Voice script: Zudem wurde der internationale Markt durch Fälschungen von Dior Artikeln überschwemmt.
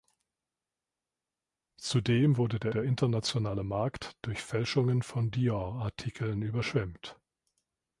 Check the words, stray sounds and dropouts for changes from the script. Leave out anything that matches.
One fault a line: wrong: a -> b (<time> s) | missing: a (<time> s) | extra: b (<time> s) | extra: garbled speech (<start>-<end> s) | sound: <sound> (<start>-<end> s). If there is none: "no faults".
extra: der (2.7 s)